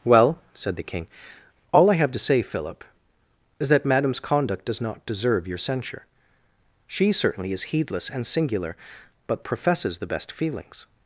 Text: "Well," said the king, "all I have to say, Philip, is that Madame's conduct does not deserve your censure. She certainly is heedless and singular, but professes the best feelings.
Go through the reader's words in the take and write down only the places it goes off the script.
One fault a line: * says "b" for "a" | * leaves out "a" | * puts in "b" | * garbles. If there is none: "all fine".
all fine